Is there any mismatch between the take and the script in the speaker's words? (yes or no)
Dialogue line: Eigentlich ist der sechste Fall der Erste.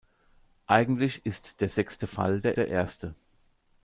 yes